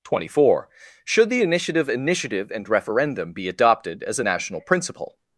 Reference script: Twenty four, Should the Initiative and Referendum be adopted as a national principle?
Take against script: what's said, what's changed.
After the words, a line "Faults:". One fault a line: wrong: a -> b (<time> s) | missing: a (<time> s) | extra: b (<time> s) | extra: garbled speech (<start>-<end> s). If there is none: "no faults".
Twenty four, Should the Initiative Initiative and Referendum be adopted as a national principle?
Faults:
extra: Initiative (1.9 s)